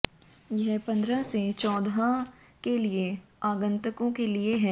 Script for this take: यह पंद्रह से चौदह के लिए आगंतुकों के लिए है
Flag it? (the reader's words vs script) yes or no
no